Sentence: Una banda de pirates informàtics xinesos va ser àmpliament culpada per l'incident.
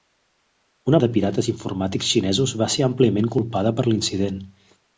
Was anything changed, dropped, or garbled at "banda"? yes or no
yes